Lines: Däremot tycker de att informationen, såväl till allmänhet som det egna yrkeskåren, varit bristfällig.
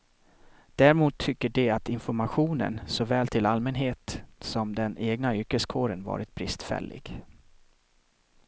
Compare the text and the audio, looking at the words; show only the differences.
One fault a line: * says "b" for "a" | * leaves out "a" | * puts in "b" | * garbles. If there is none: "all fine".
* says "den" for "det"